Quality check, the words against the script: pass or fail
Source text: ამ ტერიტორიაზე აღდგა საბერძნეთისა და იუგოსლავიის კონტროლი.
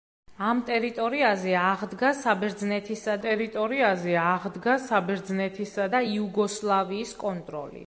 fail